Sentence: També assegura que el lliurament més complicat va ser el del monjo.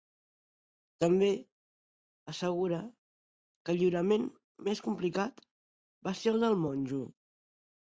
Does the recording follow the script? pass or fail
pass